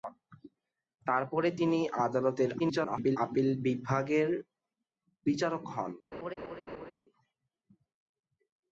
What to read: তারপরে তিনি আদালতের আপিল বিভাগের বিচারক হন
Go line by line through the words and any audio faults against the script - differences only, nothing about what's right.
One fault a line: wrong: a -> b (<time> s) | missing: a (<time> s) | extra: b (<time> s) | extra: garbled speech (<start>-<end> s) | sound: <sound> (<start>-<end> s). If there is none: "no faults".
extra: garbled speech (2.6-3.2 s)
sound: laugh (6.1-6.9 s)